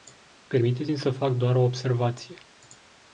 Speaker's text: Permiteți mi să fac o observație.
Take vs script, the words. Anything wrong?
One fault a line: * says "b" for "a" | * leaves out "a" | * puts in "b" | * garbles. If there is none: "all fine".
* puts in "doar"